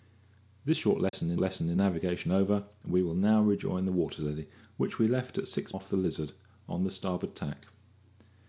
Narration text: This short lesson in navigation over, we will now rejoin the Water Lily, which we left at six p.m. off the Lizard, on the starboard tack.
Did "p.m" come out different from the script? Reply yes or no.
yes